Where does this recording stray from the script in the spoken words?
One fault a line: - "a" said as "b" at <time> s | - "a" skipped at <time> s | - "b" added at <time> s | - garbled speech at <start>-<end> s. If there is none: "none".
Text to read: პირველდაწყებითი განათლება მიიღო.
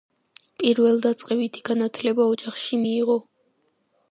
- "ოჯახში" added at 2.3 s